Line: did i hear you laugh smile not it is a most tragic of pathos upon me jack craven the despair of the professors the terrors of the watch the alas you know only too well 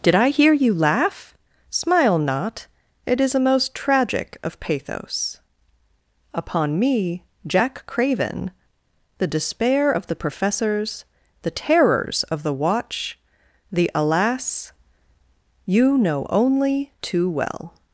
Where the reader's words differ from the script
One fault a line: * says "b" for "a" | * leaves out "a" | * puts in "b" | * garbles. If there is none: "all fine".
all fine